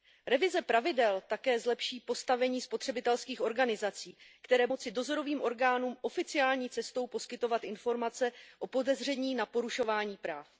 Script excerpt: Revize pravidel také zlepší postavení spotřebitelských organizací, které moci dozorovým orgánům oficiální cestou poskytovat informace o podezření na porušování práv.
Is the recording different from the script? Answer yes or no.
no